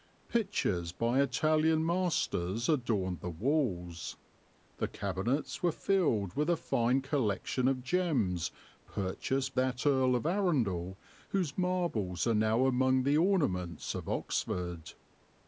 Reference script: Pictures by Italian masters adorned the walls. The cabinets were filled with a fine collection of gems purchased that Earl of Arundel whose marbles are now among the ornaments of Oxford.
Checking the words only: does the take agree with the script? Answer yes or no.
yes